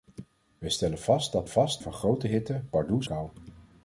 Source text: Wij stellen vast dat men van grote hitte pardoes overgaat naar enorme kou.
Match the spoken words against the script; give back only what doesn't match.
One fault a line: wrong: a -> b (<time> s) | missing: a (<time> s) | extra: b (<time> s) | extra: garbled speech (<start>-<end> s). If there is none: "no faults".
wrong: men -> vast (1.5 s)
missing: overgaat naar enorme (3.1 s)